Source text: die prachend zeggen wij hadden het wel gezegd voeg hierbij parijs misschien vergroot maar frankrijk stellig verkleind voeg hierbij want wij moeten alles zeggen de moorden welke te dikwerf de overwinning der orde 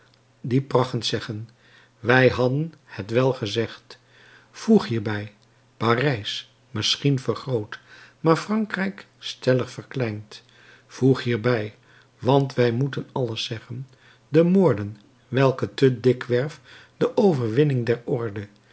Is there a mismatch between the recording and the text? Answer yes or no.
no